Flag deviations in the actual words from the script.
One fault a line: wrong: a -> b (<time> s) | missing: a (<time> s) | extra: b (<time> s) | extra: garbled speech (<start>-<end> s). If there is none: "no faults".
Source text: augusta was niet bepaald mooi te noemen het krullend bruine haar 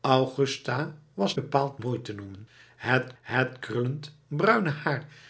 missing: niet (1.4 s)
extra: het (3.2 s)